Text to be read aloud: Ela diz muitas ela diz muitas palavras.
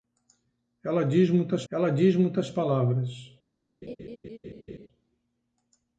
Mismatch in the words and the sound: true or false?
true